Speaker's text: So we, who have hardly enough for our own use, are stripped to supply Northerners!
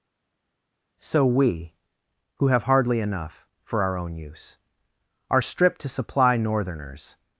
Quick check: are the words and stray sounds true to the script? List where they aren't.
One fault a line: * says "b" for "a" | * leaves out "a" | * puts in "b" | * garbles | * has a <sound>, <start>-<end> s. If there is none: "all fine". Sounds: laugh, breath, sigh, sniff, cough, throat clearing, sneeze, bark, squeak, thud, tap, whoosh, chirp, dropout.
all fine